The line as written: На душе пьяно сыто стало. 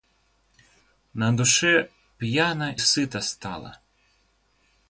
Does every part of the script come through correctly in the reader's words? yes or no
yes